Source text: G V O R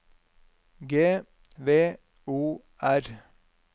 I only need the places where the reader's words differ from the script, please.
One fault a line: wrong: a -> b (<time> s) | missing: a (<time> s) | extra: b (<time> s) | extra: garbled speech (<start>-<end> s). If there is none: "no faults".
no faults